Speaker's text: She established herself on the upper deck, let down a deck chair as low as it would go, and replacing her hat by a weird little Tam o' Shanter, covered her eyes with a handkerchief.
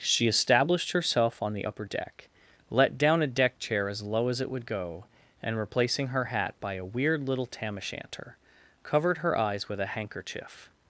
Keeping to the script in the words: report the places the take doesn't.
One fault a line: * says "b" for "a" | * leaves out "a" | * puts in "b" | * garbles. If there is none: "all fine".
all fine